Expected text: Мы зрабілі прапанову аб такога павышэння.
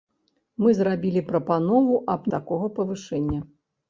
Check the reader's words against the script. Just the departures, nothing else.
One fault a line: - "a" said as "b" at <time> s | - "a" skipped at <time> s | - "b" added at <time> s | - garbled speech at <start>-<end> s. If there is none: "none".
none